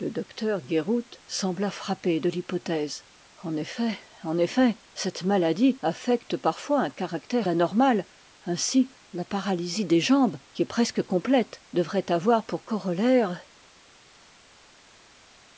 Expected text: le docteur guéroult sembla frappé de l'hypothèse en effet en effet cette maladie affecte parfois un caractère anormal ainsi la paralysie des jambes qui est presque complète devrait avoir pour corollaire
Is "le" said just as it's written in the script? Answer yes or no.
yes